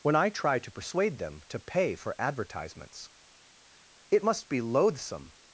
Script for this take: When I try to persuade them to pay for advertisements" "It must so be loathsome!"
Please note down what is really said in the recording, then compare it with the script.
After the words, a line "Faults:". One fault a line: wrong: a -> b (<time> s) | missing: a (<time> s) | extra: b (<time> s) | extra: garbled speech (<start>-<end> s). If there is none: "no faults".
When I try to persuade them to pay for advertisements" "It must be loathsome!"
Faults:
missing: so (4.5 s)